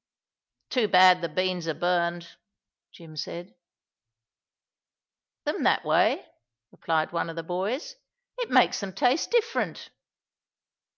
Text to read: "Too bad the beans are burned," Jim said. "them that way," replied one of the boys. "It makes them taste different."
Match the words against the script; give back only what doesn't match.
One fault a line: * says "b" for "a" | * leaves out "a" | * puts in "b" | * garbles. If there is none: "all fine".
all fine